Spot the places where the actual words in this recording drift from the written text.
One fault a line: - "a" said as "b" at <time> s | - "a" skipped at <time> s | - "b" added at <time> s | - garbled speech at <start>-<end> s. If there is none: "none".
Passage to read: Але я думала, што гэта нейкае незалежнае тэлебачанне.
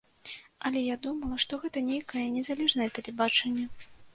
none